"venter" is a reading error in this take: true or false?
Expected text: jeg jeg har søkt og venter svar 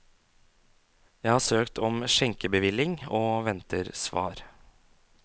false